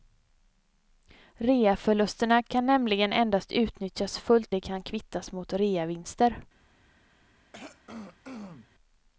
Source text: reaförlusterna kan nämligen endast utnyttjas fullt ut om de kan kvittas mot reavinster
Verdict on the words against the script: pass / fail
fail